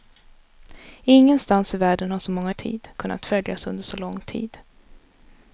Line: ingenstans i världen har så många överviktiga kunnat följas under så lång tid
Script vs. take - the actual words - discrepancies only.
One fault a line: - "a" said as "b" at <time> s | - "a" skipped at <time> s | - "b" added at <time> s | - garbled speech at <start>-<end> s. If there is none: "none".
- "överviktiga" said as "tid" at 2.5 s